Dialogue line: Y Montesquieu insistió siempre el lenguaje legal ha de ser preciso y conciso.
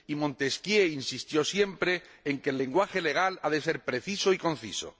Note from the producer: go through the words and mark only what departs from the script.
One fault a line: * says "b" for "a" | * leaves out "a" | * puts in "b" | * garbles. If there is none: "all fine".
* puts in "en que"